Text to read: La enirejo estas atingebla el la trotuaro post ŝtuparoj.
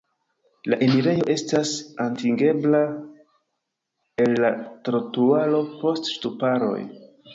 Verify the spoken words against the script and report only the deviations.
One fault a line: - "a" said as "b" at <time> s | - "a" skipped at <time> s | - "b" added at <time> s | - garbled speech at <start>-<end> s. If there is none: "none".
none